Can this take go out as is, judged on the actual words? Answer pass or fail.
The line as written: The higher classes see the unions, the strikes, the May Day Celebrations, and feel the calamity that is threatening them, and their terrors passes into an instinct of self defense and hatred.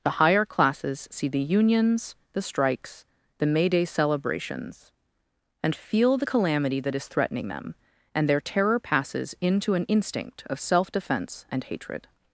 fail